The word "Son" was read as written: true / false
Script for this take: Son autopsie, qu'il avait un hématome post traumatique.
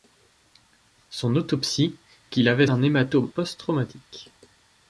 true